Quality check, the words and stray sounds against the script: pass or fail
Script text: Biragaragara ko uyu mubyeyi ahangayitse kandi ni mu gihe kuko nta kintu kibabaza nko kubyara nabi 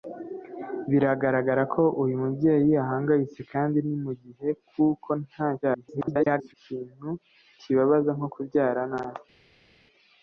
fail